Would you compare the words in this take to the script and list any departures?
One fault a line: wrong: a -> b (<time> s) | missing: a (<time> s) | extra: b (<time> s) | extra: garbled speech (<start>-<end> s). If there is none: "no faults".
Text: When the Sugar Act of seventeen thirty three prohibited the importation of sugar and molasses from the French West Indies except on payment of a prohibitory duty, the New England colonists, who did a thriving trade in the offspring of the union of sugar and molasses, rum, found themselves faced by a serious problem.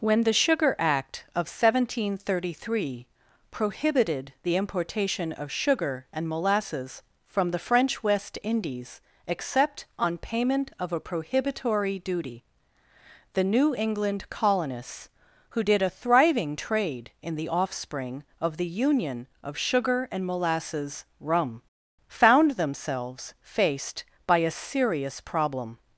no faults